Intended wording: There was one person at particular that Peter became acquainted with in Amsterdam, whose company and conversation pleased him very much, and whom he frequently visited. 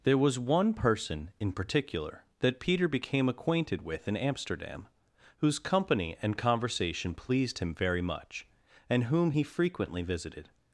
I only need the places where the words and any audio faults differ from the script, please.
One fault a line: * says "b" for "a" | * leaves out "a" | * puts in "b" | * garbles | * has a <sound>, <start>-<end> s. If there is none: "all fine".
* says "in" for "at"